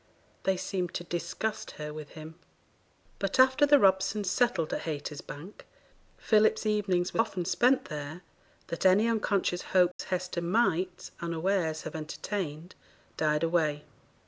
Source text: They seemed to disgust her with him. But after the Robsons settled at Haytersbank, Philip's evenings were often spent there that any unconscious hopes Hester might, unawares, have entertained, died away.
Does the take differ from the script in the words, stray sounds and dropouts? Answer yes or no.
yes